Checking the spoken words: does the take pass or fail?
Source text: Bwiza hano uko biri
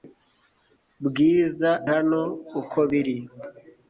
pass